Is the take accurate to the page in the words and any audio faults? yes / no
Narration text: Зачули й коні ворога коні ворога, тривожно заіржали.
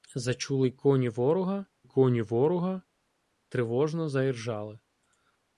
yes